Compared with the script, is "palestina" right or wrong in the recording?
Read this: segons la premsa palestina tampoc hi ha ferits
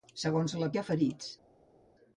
wrong